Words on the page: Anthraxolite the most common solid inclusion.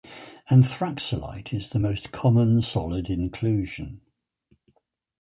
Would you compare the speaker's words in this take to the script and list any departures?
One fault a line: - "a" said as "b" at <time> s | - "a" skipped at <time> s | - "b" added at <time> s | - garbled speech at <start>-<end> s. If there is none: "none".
- "is" added at 1.5 s